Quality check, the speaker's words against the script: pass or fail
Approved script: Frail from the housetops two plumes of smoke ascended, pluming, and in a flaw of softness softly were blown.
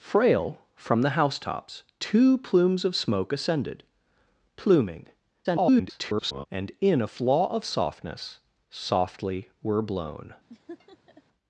fail